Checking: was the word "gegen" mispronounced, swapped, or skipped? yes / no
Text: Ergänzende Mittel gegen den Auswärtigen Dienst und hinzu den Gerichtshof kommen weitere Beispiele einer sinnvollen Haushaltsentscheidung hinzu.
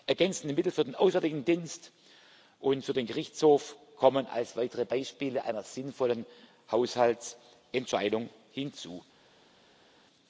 yes